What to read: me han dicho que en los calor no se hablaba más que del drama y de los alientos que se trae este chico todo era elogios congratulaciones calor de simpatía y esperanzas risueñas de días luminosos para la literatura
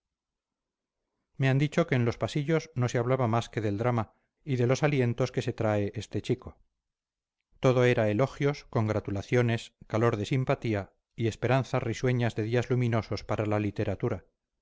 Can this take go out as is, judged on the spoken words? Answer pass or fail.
fail